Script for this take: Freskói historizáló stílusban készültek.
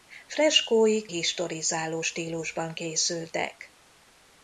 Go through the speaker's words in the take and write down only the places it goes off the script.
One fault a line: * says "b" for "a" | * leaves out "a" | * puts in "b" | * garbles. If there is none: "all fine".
all fine